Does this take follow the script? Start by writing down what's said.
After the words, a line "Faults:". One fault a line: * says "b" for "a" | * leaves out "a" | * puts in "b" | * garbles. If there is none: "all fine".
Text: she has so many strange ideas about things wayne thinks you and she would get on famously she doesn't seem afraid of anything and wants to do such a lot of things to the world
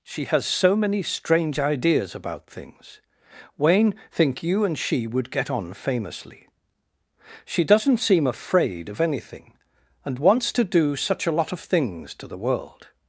she has so many strange ideas about things wayne think you and she would get on famously she doesn't seem afraid of anything and wants to do such a lot of things to the world
Faults:
* says "think" for "thinks"